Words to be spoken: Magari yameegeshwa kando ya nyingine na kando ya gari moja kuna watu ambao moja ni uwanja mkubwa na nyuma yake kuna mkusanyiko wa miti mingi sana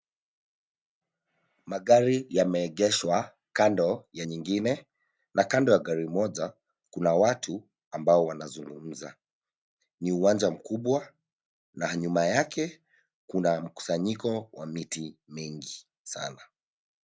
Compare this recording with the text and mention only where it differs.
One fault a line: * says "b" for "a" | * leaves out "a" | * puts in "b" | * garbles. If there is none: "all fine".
* says "wanazungumza" for "moja"